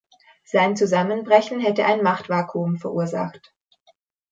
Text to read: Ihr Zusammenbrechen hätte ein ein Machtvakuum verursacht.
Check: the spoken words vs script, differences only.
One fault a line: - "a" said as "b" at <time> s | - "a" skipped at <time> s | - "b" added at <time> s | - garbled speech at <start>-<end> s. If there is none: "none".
- "Ihr" said as "Sein" at 0.4 s
- "ein" skipped at 2.0 s